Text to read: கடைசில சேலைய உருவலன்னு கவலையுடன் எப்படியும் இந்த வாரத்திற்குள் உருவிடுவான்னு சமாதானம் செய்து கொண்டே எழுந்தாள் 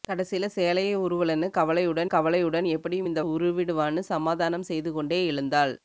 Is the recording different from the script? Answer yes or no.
yes